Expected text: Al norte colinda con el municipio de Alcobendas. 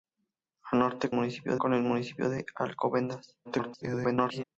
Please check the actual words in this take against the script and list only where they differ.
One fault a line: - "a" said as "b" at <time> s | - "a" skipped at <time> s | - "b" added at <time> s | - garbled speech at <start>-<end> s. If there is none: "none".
- "colinda" said as "municipio" at 1.1 s
- garbled speech at 3.4-4.4 s